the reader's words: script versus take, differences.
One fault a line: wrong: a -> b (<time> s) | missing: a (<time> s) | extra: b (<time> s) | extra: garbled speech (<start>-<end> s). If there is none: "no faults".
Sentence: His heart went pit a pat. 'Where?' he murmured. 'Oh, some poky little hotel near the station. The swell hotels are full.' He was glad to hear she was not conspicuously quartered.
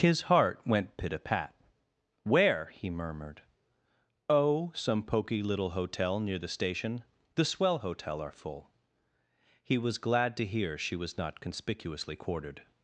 wrong: hotels -> hotel (7.8 s)